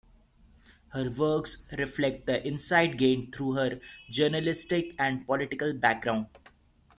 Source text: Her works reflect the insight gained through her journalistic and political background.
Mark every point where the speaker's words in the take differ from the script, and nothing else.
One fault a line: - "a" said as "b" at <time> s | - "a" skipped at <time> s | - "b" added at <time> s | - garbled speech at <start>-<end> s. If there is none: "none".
none